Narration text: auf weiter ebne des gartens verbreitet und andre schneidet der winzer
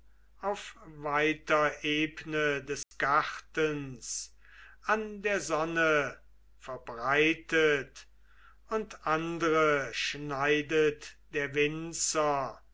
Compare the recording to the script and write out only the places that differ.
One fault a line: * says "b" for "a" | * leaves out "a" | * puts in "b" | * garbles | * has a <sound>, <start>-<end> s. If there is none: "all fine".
* has a dropout, 2.8-2.9 s
* puts in "an der sonne"